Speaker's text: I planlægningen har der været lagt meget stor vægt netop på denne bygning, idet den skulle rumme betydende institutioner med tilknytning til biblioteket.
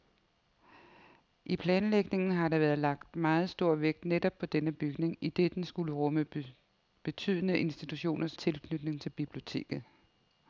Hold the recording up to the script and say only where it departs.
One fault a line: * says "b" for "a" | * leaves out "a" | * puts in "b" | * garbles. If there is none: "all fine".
* leaves out "med"